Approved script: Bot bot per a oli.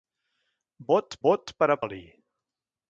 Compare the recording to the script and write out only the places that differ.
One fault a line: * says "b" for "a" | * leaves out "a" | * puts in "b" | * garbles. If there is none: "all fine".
all fine